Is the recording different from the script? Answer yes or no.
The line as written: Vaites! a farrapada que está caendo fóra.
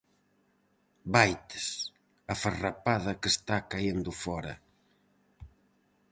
no